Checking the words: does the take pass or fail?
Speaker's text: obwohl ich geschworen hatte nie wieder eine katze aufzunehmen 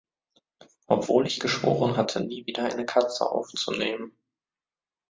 pass